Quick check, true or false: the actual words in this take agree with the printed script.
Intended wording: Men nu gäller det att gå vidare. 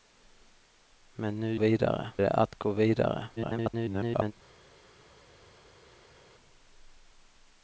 false